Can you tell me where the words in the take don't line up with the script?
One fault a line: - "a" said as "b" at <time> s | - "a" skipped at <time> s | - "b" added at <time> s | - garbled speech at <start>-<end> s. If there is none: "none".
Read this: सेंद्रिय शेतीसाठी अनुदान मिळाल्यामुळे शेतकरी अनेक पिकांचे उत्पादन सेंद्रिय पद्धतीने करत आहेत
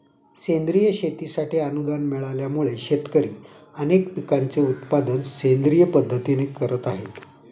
none